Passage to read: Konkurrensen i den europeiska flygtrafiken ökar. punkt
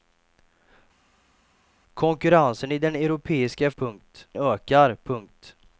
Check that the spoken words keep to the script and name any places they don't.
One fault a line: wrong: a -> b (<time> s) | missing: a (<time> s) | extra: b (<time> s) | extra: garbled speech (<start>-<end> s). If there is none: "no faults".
wrong: flygtrafiken -> punkt (3.8 s)